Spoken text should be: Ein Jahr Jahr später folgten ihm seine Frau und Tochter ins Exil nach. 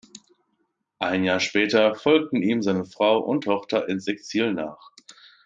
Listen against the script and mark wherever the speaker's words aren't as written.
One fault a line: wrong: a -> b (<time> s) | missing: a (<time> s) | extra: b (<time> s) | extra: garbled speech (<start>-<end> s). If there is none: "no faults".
missing: Jahr (1.4 s)